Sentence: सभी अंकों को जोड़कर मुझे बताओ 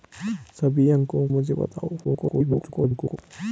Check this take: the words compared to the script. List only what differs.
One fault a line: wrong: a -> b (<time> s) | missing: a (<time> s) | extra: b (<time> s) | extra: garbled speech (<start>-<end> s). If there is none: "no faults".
missing: को जोड़कर (1.3 s)
extra: garbled speech (2.0-3.2 s)